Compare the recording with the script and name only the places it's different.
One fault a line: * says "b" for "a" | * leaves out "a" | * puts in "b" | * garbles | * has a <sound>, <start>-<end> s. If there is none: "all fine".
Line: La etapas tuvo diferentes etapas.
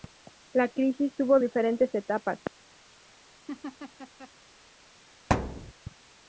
* says "crisis" for "etapas"
* has a laugh, 3.5-4.3 s
* has a thud, 5.3-5.7 s